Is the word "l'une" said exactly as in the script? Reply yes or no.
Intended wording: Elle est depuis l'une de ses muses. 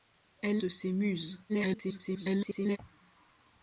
no